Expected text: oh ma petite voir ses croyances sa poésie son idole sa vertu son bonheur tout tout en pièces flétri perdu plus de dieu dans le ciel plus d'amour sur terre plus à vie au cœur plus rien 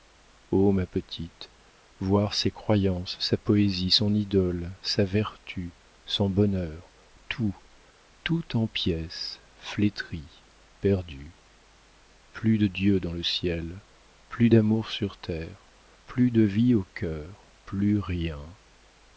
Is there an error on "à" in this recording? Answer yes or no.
yes